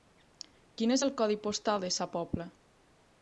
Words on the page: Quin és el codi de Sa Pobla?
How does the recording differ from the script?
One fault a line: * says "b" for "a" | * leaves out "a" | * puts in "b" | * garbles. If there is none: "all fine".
* puts in "postal"